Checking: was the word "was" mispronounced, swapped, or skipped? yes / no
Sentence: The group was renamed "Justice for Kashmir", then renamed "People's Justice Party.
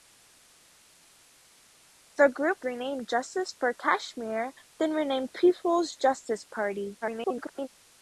yes